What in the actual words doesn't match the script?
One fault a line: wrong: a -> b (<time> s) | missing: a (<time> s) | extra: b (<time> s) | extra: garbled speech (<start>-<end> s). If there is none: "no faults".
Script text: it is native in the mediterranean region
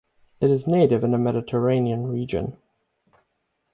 no faults